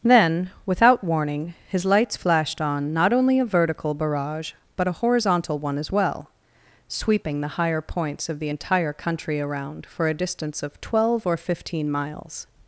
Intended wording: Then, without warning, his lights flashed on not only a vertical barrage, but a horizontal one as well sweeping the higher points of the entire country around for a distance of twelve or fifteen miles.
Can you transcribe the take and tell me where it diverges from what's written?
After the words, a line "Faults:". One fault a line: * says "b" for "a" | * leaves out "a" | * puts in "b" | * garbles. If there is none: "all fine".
Then, without warning, his lights flashed on not only a vertical barrage, but a horizontal one as well sweeping the higher points of the entire country around for a distance of twelve or fifteen miles.
Faults:
all fine